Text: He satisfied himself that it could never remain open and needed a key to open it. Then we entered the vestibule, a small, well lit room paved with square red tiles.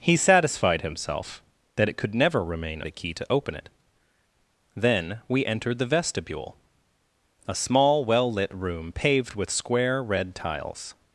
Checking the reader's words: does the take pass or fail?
fail